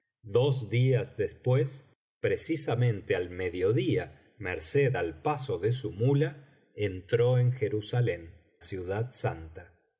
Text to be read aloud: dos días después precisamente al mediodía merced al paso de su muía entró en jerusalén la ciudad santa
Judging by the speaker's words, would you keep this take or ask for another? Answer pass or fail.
fail